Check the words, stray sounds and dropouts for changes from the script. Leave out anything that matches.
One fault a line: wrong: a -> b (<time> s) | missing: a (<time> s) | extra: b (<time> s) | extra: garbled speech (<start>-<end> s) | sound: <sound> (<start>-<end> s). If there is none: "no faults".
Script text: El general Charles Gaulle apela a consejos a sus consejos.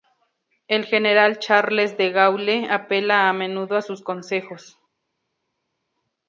extra: De (1.9 s)
wrong: consejos -> menudo (3.3 s)